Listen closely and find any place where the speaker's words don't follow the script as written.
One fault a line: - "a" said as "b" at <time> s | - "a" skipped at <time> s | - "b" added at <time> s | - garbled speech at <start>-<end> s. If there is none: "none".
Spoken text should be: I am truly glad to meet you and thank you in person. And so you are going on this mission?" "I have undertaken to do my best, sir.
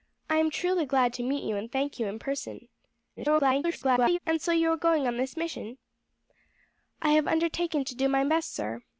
- garbled speech at 3.2-4.2 s